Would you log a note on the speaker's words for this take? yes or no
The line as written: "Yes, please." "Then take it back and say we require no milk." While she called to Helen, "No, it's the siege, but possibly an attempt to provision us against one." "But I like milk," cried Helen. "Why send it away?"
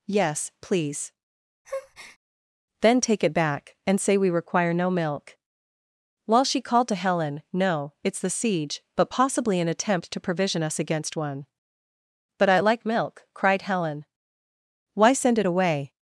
no